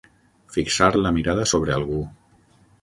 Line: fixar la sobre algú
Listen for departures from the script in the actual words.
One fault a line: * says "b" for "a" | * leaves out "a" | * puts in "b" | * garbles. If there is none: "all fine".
* puts in "mirada"